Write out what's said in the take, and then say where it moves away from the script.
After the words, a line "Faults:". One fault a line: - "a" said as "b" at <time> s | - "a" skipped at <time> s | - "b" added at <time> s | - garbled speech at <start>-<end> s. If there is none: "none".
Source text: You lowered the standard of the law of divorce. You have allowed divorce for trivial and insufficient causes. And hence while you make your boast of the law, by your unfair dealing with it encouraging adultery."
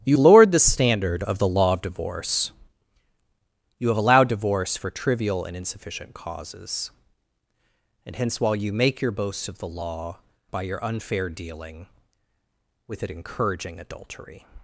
You lowered the standard of the law of divorce. You have allowed divorce for trivial and insufficient causes. And hence while you make your boast of the law, by your unfair dealing with it encouraging adultery."
Faults:
none